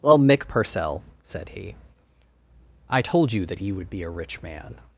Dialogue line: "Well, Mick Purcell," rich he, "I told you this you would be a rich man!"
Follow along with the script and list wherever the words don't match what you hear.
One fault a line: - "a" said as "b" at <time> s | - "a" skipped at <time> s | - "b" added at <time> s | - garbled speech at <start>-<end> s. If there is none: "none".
- "rich" said as "said" at 1.2 s
- "this" said as "that" at 3.5 s